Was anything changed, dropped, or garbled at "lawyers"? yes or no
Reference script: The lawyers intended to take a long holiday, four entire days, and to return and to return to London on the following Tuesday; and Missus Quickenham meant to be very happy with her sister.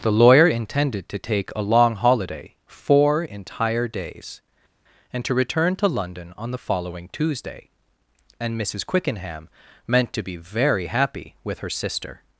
yes